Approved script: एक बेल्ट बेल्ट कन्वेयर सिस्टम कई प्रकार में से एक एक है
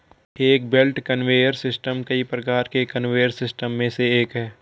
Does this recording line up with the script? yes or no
no